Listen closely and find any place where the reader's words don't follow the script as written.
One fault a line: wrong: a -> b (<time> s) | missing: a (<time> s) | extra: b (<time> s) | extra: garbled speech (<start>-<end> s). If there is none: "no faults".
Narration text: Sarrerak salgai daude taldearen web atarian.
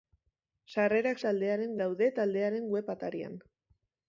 wrong: salgai -> taldearen (1.3 s)